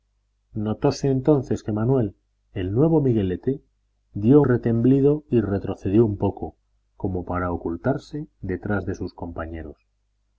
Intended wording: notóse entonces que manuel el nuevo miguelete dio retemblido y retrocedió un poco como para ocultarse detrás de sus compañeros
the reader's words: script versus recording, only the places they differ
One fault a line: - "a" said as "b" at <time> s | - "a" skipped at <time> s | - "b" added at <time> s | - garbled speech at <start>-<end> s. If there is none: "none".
none